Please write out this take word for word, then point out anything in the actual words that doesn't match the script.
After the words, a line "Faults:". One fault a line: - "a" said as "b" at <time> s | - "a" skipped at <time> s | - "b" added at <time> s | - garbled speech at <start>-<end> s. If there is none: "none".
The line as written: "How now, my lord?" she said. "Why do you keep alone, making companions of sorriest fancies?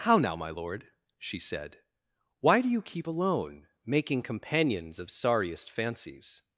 "How now, my lord?" she said. "Why do you keep alone, making companions of sorriest fancies?
Faults:
none